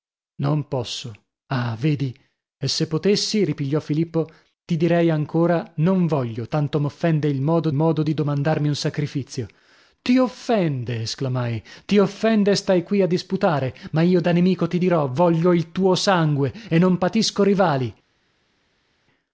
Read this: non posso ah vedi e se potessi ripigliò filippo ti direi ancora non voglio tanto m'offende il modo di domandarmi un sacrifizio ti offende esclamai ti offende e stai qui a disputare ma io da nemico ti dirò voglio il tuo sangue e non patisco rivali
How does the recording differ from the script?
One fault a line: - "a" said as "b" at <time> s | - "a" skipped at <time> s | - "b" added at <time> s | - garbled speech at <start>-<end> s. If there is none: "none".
- "modo" added at 7.7 s